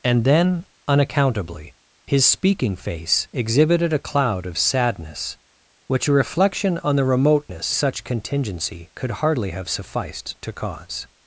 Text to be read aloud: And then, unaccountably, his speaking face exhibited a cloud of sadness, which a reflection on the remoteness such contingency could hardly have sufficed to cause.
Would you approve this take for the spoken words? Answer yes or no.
yes